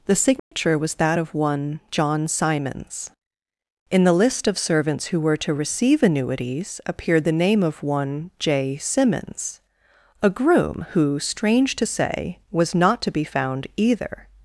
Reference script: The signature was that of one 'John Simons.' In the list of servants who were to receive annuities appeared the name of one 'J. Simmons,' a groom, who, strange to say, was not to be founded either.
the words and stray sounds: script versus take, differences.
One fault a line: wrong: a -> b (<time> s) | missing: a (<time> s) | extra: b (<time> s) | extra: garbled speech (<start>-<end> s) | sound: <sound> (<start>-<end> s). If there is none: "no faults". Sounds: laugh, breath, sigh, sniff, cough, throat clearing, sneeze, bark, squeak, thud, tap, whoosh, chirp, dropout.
sound: dropout (0.4-0.5 s)
wrong: founded -> found (13.2 s)